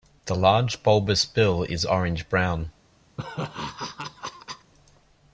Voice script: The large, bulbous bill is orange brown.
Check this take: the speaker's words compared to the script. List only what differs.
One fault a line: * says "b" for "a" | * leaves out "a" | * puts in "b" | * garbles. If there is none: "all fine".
all fine